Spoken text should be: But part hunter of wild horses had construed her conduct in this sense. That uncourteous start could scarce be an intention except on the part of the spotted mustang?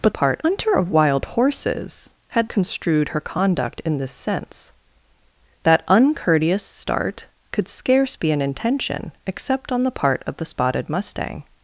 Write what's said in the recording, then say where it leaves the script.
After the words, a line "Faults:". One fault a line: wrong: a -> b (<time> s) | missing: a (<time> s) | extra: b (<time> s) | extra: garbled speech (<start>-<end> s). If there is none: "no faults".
But part hunter of wild horses had construed her conduct in this sense. That uncourteous start could scarce be an intention except on the part of the spotted mustang?
Faults:
no faults